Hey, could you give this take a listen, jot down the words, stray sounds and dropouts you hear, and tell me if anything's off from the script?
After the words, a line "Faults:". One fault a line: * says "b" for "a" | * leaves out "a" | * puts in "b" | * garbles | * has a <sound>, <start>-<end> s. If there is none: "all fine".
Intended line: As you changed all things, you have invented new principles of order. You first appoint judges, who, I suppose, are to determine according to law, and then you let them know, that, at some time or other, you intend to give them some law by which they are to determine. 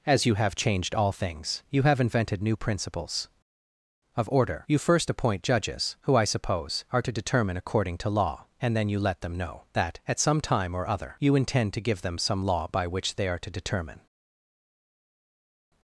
As you have changed all things, you have invented new principles of order. You first appoint judges, who, I suppose, are to determine according to law, and then you let them know, that, at some time or other, you intend to give them some law by which they are to determine.
Faults:
* puts in "have"